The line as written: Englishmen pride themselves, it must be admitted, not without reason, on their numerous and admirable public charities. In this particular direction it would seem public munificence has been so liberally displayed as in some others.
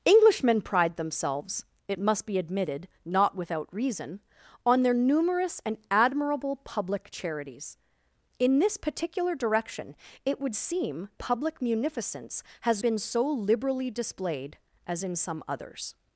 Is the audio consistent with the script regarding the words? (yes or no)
yes